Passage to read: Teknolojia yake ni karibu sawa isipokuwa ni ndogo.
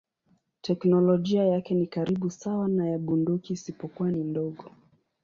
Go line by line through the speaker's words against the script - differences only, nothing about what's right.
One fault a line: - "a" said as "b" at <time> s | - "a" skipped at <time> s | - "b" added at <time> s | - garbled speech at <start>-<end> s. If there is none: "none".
- "na ya bunduki" added at 2.7 s